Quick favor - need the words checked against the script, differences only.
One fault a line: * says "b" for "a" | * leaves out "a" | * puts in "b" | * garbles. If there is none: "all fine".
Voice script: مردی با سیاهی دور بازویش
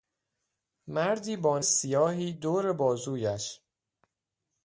all fine